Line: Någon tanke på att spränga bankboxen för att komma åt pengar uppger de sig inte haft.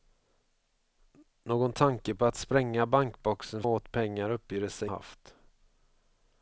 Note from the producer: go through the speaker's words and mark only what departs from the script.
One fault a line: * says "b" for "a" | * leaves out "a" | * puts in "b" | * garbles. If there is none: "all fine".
* leaves out "för att komma"
* leaves out "inte"